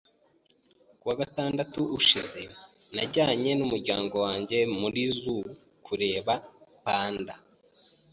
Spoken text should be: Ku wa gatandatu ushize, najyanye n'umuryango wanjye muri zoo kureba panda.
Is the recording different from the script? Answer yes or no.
no